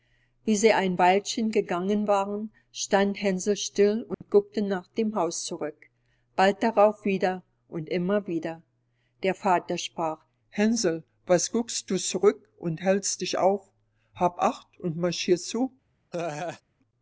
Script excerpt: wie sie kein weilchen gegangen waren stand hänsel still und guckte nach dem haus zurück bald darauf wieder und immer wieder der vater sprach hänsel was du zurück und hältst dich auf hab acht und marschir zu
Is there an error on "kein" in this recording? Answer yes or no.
yes